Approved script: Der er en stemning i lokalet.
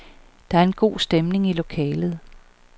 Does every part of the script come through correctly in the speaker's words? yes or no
no